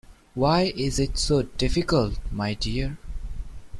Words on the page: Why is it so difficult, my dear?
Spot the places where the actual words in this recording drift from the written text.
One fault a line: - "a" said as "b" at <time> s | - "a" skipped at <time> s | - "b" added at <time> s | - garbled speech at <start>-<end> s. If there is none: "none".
none